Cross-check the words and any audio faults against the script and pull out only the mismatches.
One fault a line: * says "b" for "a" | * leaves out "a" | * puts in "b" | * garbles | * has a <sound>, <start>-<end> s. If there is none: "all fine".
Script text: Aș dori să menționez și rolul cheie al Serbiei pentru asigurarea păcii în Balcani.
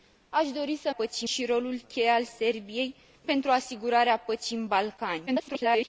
* says "păcii" for "menționez"
* garbles